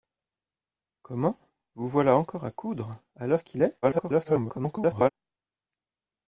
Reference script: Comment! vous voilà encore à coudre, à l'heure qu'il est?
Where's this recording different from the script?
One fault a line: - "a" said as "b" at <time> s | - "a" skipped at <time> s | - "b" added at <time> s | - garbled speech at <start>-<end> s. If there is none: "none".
- garbled speech at 3.8-5.1 s